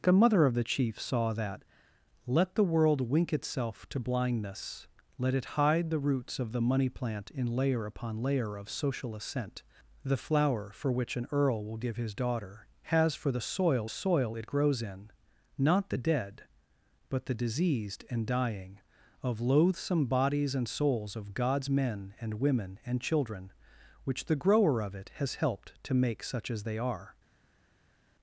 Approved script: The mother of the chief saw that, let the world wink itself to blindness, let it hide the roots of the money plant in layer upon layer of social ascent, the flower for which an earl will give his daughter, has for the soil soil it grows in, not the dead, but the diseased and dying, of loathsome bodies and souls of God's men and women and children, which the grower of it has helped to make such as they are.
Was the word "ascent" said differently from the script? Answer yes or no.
no